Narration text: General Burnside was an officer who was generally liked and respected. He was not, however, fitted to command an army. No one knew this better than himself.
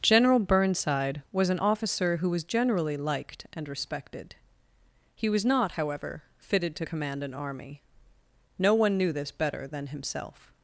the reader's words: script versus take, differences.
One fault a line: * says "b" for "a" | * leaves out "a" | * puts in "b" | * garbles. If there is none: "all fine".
all fine